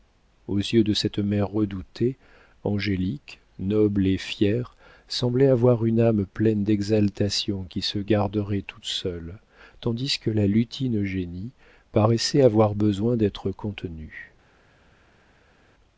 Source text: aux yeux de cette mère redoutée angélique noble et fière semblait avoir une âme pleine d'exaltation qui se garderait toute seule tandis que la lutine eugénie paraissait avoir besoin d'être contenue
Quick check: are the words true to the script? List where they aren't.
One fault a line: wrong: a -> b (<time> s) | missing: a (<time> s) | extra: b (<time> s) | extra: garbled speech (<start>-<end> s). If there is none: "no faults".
no faults